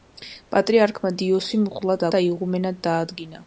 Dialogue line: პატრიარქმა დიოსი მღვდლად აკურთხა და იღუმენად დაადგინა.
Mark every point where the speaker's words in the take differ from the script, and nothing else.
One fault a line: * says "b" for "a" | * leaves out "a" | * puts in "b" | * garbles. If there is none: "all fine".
* leaves out "აკურთხა"